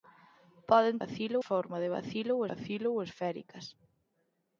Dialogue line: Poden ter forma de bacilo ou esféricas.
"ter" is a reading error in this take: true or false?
true